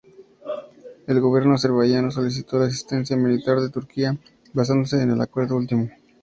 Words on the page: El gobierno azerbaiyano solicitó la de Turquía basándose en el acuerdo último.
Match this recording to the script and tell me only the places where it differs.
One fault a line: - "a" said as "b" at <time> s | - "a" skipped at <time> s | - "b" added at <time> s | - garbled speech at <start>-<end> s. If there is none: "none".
- "asistencia militar" added at 2.6 s